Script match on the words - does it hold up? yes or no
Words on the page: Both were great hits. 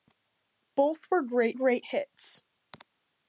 no